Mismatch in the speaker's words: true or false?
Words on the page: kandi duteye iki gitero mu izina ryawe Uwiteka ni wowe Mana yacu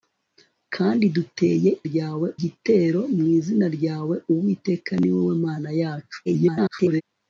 true